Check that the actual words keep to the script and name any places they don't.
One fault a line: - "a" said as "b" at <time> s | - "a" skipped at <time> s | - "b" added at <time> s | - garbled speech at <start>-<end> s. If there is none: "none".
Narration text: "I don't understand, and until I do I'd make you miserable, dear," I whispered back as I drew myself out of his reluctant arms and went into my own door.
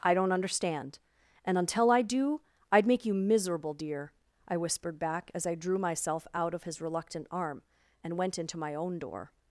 - "arms" said as "arm" at 7.3 s